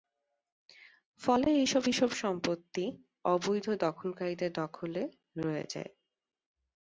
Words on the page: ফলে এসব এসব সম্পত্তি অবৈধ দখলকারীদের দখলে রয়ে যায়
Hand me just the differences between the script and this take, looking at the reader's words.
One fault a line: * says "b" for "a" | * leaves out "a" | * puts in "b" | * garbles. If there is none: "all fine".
all fine